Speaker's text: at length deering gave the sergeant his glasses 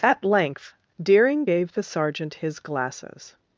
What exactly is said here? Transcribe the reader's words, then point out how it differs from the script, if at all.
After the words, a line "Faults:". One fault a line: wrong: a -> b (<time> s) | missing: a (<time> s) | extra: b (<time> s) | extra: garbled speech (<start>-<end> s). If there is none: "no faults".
at length deering gave the sergeant his glasses
Faults:
no faults